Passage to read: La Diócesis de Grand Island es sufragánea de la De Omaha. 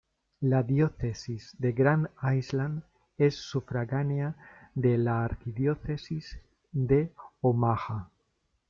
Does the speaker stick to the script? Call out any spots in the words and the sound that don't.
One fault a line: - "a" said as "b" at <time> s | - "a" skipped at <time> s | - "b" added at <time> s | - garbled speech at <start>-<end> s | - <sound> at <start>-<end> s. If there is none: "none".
- "Arquidiócesis" added at 5.2 s